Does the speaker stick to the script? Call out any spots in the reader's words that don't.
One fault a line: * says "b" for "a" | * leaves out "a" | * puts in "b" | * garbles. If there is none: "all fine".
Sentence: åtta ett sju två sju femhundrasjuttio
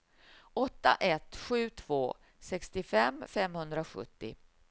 * says "sextiofem" for "sju"